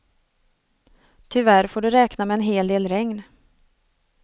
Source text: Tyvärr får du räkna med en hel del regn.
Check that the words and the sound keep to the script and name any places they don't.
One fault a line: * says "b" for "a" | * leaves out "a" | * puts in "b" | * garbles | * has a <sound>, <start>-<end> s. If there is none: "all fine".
all fine